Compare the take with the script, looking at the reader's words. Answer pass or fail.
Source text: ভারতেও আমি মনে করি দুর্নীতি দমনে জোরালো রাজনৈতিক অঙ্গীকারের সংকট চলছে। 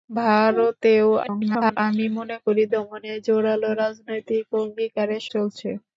fail